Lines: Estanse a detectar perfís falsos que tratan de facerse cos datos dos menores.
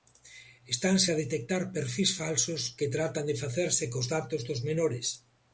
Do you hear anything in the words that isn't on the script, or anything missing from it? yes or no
no